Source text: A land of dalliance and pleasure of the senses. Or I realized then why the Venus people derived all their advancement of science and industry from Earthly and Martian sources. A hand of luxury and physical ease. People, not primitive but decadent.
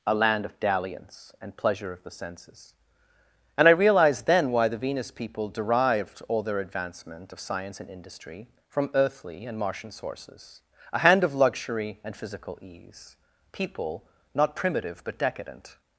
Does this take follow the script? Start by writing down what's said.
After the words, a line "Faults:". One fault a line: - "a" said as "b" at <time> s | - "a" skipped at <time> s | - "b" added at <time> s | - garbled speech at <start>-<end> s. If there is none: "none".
A land of dalliance and pleasure of the senses. And I realized then why the Venus people derived all their advancement of science and industry from Earthly and Martian sources. A hand of luxury and physical ease. People, not primitive but decadent.
Faults:
- "Or" said as "And" at 3.6 s